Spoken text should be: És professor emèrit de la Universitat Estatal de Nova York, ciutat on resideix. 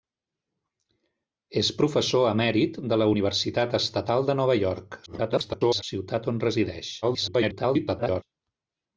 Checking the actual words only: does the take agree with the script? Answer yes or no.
no